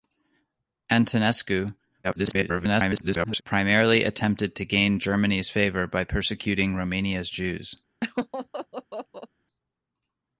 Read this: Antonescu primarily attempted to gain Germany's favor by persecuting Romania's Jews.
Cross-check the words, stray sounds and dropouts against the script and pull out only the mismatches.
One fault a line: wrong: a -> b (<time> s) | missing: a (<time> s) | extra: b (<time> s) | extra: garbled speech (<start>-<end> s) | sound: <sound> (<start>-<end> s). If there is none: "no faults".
extra: garbled speech (2.0-3.4 s)
sound: laugh (8.0-9.3 s)